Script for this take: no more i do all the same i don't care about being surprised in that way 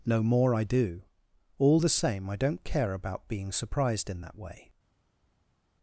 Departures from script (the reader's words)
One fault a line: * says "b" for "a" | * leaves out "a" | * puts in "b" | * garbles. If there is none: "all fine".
all fine